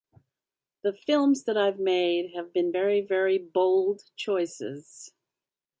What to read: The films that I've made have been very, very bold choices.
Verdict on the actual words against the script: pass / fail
pass